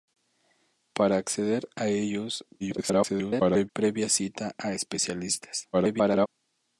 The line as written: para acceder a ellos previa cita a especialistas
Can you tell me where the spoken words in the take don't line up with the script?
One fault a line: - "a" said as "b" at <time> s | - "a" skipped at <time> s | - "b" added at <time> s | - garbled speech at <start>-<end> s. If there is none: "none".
- garbled speech at 2.6-3.7 s
- garbled speech at 5.7-6.3 s